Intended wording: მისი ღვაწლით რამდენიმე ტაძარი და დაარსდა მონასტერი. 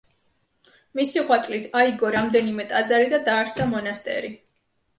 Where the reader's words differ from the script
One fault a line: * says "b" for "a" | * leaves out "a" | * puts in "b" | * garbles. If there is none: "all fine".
* puts in "აიგო"